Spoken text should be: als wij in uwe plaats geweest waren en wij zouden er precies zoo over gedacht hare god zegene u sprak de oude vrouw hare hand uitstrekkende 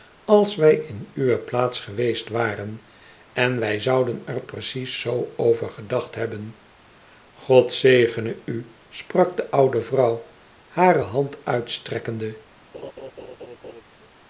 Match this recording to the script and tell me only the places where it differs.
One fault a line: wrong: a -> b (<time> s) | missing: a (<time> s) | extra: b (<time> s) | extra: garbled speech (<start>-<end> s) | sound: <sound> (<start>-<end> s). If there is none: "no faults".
wrong: hare -> hebben (6.2 s)
sound: laugh (12.7-13.8 s)